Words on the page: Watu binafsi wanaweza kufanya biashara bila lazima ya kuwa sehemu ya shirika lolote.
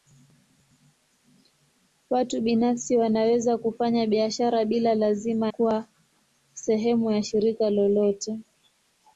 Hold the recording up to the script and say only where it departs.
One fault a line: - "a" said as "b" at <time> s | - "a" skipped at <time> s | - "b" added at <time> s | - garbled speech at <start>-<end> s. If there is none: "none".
- "ya" skipped at 5.5 s